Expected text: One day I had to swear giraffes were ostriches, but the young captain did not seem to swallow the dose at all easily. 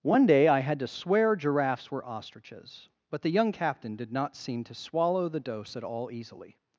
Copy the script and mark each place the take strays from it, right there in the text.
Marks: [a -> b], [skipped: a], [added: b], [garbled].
One day I had to swear giraffes were ostriches, but the young captain did not seem to swallow the dose at all easily.